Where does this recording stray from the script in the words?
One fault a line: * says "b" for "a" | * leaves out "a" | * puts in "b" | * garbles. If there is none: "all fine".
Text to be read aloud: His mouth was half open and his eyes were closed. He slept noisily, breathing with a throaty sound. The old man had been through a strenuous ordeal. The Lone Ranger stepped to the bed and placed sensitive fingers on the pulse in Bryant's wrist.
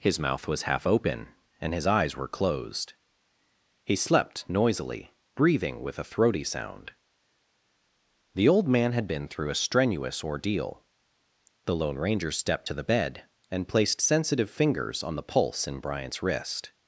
all fine